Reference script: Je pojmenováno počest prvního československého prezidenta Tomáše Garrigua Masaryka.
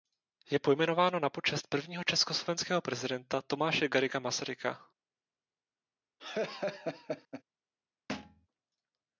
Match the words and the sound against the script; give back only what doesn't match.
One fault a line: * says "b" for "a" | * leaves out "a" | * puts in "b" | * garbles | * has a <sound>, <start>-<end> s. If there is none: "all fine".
* puts in "na"
* has a laugh, 6.2-7.4 s
* has a thud, 8.1-8.5 s